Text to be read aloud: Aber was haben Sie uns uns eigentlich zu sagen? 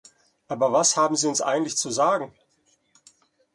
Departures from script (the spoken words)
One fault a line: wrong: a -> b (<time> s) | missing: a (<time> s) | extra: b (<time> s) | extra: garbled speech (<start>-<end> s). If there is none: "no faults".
missing: uns (1.4 s)